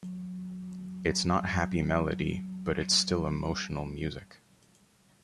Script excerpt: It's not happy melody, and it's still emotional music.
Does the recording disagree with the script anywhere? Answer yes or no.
yes